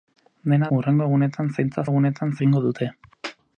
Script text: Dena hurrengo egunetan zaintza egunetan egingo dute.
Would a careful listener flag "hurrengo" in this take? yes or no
no